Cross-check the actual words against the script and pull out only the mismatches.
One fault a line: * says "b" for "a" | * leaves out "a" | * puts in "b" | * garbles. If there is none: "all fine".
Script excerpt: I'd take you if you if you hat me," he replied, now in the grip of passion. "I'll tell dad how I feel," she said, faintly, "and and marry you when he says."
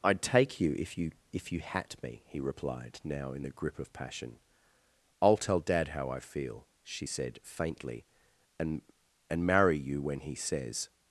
all fine